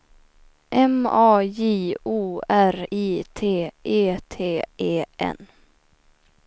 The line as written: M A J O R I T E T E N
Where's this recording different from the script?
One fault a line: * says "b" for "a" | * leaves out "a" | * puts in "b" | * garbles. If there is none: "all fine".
all fine